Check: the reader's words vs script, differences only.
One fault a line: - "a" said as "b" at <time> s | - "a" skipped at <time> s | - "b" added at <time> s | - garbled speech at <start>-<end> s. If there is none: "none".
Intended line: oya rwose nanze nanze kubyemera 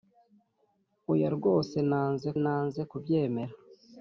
none